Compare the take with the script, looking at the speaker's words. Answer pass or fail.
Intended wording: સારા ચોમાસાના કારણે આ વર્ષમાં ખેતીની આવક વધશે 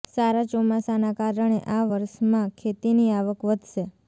pass